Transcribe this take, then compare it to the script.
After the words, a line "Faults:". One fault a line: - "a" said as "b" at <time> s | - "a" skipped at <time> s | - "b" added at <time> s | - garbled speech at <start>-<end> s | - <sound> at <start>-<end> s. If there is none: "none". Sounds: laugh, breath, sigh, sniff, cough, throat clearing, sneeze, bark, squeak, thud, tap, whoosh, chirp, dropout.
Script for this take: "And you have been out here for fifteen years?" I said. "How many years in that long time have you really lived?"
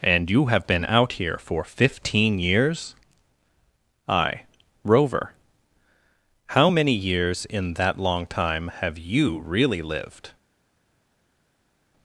"And you have been out here for fifteen years?" I rover. "How many years in that long time have you really lived?"
Faults:
- "said" said as "rover" at 4.8 s